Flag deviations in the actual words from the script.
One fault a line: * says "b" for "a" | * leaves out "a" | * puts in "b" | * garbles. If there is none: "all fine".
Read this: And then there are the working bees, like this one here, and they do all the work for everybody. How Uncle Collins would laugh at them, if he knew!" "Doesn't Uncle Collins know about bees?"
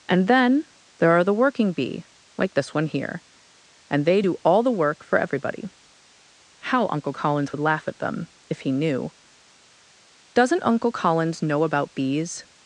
* says "bee" for "bees"